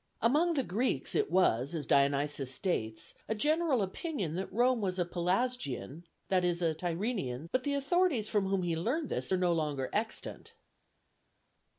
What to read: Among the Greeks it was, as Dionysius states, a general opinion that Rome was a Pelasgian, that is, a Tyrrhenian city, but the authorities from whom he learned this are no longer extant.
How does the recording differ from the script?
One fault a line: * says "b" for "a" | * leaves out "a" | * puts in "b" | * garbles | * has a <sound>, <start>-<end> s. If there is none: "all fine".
* leaves out "city"